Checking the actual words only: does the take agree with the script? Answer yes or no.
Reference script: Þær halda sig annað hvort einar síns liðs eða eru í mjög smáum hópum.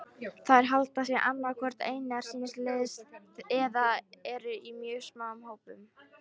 yes